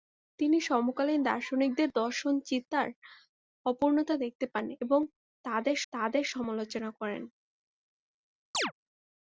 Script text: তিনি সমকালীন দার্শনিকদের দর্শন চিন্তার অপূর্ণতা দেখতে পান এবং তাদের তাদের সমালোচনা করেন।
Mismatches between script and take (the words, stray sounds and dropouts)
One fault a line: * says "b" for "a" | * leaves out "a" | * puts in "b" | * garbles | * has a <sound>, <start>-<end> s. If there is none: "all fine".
* has a chirp, 8.5-8.7 s